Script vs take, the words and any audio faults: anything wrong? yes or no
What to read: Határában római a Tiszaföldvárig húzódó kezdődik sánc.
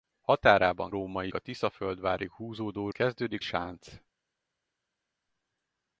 no